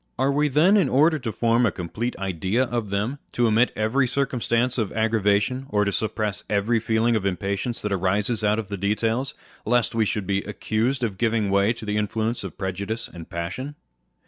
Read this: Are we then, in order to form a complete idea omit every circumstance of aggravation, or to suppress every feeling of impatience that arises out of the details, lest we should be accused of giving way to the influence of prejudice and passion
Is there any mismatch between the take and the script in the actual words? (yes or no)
yes